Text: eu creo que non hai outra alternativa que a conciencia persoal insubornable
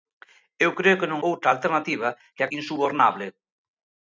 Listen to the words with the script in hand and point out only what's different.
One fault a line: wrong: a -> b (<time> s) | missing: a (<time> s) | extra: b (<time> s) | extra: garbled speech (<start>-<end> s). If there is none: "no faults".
missing: hai (1.2 s)
missing: conciencia persoal (2.5 s)